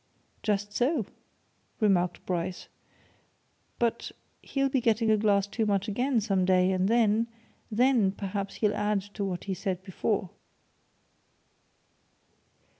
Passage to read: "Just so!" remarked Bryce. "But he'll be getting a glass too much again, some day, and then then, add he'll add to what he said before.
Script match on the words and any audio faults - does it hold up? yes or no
no